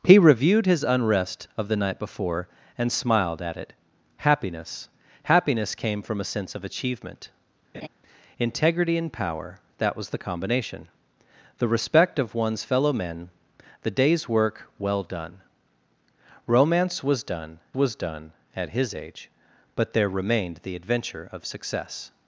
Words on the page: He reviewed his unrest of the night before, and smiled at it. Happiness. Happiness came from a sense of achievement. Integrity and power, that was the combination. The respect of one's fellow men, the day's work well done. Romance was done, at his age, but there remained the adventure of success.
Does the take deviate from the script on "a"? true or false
false